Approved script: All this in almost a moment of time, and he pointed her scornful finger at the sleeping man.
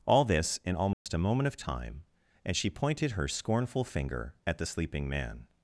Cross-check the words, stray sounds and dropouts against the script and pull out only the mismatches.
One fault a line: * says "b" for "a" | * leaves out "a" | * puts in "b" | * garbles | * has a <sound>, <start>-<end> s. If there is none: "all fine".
* has a dropout, 0.9-1.1 s
* says "she" for "he"